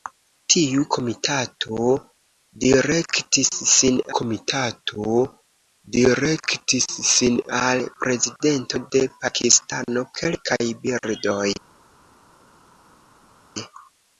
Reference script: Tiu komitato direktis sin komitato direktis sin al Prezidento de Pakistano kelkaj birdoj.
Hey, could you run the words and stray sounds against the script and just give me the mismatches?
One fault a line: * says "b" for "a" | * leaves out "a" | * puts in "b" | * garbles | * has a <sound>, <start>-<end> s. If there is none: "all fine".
all fine